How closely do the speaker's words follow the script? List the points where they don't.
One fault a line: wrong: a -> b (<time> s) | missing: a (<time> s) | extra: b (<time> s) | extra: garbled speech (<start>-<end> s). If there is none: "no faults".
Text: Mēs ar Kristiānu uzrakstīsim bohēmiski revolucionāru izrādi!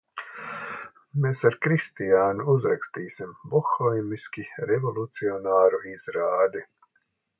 no faults